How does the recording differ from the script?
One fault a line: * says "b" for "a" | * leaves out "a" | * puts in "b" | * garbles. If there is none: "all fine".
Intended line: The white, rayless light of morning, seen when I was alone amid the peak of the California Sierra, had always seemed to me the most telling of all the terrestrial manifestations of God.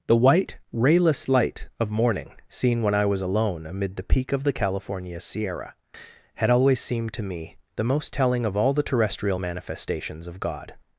all fine